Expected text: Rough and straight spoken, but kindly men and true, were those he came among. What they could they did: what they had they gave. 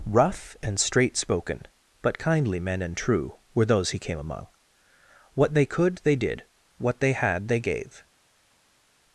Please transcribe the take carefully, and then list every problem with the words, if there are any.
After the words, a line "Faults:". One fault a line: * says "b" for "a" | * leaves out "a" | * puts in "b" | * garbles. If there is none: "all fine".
Rough and straight spoken, but kindly men and true, were those he came among. What they could they did: what they had they gave.
Faults:
all fine